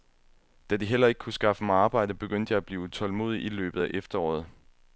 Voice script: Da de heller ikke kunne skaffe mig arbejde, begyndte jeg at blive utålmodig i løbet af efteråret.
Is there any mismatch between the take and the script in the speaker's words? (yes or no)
no